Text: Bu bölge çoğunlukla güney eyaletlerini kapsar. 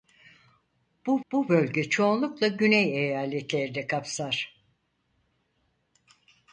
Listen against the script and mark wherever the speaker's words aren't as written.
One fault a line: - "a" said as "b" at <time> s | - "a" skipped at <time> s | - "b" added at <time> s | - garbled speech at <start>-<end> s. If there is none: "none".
- "bu" added at 1.3 s